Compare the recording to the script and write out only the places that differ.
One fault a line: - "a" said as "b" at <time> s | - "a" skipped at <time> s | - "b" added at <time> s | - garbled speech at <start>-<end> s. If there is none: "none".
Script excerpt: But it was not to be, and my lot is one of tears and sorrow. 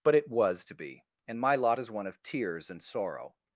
- "not" skipped at 0.7 s